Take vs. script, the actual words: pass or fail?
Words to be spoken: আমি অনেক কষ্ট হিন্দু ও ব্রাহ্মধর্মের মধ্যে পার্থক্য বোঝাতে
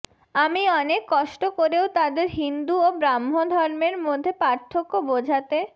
fail